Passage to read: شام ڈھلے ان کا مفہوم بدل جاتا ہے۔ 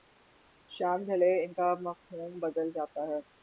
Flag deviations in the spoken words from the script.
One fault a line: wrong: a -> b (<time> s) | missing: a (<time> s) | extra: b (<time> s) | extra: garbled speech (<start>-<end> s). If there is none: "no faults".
no faults